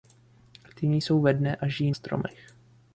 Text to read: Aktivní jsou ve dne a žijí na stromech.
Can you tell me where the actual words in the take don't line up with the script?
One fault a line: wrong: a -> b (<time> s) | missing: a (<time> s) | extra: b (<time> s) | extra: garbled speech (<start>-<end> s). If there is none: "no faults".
missing: na (1.9 s)